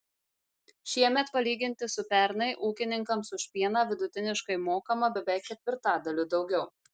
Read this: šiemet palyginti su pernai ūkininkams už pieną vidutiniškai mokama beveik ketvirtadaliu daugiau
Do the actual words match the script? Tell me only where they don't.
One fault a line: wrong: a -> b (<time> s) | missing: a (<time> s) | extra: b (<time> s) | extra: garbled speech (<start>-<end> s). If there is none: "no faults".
no faults